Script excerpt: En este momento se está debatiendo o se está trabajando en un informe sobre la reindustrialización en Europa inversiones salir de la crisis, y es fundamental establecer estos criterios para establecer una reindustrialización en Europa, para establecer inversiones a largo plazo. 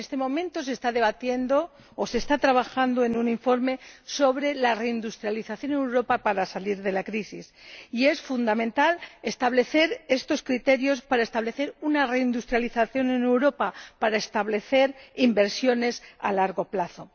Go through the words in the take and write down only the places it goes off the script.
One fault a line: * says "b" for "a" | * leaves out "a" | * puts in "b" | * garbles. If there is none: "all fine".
* says "para" for "inversiones"